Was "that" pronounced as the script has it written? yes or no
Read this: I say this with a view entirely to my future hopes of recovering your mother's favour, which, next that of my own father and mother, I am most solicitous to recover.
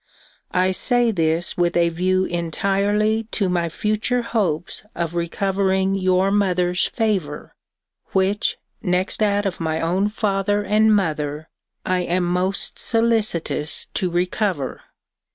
yes